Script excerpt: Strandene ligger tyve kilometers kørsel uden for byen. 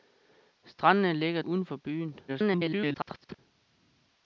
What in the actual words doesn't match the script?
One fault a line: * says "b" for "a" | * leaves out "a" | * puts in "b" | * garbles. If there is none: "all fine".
* leaves out "tyve kilometers kørsel"
* garbles